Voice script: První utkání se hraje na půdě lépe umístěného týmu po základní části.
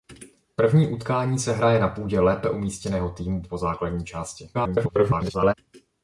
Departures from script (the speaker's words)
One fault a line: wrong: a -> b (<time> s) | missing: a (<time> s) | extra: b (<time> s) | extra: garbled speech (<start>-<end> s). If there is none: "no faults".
extra: garbled speech (4.5-5.5 s)